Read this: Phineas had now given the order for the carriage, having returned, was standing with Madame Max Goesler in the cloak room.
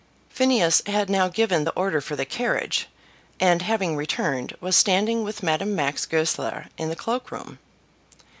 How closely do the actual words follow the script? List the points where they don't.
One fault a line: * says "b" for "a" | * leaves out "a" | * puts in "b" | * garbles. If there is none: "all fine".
* puts in "and"